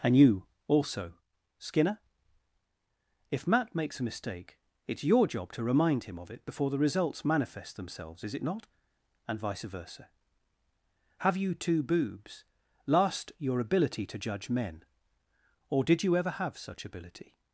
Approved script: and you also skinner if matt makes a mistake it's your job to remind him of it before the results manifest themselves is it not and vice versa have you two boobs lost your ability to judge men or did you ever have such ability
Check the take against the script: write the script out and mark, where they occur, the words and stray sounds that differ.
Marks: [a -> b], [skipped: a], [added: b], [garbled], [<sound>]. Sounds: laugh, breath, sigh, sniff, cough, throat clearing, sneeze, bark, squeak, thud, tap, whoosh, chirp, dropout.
and you also skinner if matt makes a mistake it's your job to remind him of it before the results manifest themselves is it not and vice versa have you two boobs [lost -> last] your ability to judge men or did you ever have such ability